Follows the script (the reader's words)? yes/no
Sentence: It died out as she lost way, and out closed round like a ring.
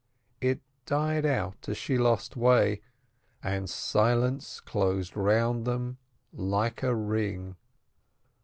no